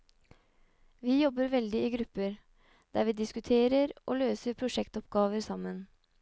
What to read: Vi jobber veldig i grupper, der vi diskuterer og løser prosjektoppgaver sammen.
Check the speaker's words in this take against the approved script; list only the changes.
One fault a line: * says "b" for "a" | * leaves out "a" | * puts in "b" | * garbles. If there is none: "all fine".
all fine